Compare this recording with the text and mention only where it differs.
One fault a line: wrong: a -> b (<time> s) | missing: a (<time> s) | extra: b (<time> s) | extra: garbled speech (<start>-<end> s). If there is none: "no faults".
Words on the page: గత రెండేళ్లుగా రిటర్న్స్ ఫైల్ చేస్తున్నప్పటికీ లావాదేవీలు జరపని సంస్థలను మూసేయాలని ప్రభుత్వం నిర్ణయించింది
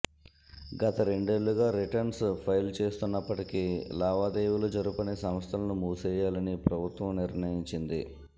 no faults